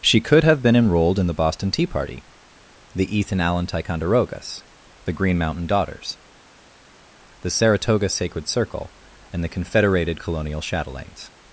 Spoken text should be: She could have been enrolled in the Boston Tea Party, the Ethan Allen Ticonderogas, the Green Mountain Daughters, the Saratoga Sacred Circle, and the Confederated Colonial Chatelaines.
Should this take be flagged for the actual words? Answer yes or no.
no